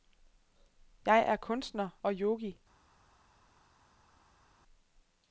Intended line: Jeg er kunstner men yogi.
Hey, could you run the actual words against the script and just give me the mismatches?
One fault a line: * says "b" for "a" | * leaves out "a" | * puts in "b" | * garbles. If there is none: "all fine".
* says "og" for "men"